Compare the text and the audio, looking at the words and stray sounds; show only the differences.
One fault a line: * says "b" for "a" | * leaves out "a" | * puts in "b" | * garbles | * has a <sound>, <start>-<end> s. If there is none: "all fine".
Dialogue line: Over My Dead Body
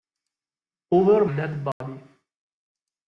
* leaves out "My"
* has a dropout, 1.7-1.8 s